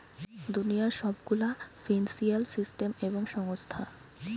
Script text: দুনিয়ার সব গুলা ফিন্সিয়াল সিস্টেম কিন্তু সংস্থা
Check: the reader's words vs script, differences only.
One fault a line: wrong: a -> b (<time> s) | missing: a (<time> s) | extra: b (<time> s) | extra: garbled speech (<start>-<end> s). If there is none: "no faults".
wrong: কিন্তু -> এবং (3.0 s)